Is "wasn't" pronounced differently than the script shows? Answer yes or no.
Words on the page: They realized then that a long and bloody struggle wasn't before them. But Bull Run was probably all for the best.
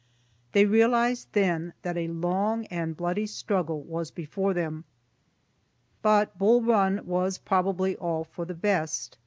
yes